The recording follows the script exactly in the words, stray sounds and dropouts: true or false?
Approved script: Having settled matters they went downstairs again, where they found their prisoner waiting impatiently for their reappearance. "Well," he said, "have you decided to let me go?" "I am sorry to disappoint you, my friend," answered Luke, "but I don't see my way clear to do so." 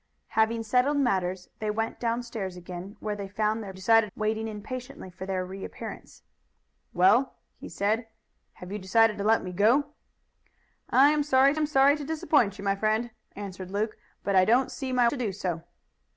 false